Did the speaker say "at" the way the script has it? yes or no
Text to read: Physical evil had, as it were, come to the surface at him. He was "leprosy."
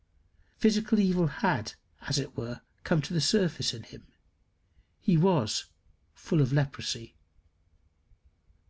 no